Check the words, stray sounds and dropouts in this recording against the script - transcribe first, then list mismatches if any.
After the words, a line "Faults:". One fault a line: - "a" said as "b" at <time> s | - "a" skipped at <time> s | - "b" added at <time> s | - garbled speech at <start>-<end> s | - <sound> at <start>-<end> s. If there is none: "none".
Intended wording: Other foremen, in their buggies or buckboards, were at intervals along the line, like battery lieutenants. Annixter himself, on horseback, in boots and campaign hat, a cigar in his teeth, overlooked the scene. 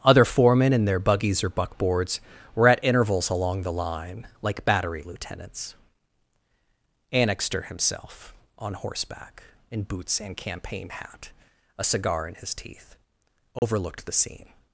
Other foremen, in their buggies or buckboards, were at intervals along the line, like battery lieutenants. Annixter himself, on horseback, in boots and campaign hat, a cigar in his teeth, overlooked the scene.
Faults:
- dropout at 13.6-13.6 s